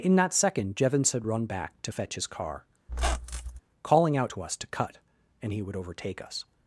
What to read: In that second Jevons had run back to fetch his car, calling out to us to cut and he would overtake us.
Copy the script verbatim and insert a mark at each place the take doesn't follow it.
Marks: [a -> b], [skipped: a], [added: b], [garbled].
In that second Jevons had run back to fetch his car, calling out to us to cut and he would overtake us.